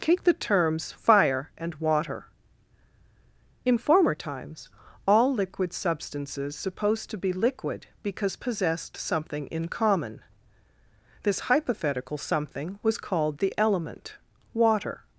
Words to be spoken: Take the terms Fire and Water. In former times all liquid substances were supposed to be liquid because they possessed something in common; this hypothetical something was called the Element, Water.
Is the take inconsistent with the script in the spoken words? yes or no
yes